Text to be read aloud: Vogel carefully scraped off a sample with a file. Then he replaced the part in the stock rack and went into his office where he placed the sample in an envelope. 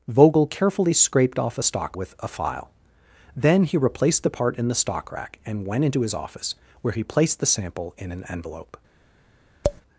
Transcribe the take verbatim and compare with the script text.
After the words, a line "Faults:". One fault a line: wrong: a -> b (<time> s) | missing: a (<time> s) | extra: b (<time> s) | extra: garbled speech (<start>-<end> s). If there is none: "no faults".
Vogel carefully scraped off a stock with a file. Then he replaced the part in the stock rack and went into his office where he placed the sample in an envelope.
Faults:
wrong: sample -> stock (1.6 s)